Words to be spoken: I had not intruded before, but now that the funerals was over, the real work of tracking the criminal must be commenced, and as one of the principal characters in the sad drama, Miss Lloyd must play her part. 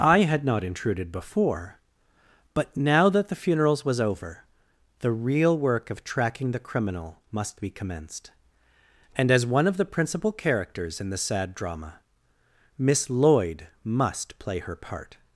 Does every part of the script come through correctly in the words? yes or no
yes